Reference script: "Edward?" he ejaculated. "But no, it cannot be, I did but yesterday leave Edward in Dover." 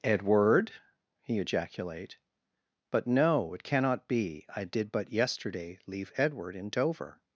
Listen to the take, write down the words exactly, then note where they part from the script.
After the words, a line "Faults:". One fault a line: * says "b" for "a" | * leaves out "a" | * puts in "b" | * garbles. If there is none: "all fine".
"Edward?" he ejaculate. "But no, it cannot be, I did but yesterday leave Edward in Dover."
Faults:
* says "ejaculate" for "ejaculated"